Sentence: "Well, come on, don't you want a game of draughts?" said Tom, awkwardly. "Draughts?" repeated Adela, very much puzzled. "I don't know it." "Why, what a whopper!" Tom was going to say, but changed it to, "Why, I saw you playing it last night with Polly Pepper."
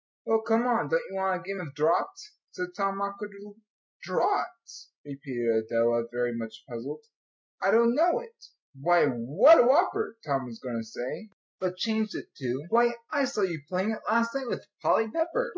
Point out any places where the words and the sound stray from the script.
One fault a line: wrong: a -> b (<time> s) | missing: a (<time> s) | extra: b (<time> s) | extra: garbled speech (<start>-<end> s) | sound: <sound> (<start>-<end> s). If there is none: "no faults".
no faults